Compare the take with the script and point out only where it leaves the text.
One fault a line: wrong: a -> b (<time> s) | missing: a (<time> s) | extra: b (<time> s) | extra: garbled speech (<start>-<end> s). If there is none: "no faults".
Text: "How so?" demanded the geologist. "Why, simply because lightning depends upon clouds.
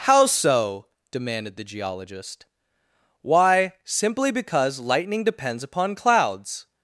no faults